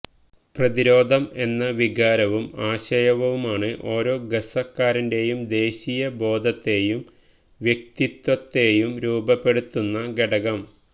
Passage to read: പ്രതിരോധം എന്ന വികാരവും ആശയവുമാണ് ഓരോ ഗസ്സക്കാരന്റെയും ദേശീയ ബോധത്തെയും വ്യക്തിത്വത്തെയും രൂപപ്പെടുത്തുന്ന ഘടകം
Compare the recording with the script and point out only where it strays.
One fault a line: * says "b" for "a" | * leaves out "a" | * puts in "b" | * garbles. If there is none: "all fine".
all fine